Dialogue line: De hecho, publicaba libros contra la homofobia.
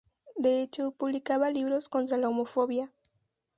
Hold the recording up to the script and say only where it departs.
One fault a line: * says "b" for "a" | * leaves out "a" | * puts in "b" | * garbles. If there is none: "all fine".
all fine